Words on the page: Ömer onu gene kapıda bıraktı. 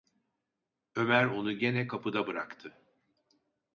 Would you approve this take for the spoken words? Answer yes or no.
yes